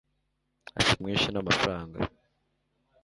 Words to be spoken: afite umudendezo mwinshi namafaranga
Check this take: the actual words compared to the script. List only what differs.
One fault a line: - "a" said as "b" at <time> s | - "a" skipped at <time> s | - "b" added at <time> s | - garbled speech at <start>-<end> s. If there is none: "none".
- "umudendezo" skipped at 1.0 s